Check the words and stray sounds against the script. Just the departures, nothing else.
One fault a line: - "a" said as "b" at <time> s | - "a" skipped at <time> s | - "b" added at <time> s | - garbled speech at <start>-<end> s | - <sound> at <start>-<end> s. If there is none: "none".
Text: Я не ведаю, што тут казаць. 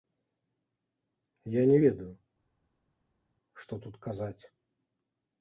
none